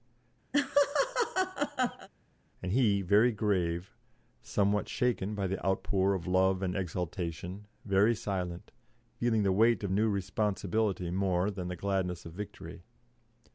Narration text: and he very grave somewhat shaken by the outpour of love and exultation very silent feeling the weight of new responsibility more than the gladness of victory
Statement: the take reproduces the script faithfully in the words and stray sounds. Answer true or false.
false